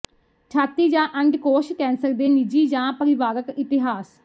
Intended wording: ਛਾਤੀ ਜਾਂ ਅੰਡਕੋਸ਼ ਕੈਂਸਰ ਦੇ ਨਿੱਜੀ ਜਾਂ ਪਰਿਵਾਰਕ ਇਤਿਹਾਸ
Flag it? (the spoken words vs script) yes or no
no